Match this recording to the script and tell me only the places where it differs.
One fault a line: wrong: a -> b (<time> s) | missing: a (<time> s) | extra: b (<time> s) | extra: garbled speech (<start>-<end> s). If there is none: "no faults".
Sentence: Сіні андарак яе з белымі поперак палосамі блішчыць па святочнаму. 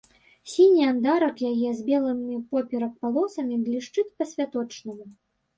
no faults